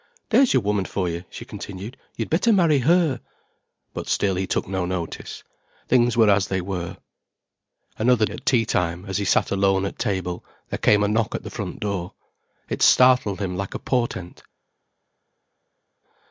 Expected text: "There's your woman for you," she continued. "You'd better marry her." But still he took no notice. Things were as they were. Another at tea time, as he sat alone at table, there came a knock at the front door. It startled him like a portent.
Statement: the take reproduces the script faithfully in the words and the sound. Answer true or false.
true